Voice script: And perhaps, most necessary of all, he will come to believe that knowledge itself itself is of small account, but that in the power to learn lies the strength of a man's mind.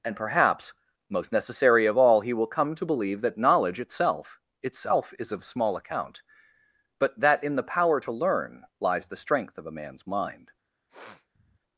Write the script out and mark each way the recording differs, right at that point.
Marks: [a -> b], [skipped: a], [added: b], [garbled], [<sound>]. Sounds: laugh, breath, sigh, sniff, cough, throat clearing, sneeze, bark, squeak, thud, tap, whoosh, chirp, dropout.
And perhaps, most necessary of all, he will come to believe that knowledge itself itself is of small account, but that in the power to learn lies the strength of a man's mind. [sniff]